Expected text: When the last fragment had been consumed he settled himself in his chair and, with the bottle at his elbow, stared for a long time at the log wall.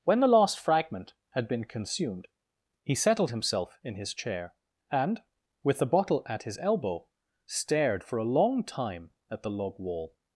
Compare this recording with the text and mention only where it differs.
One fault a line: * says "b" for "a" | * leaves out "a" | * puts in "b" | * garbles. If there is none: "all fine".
all fine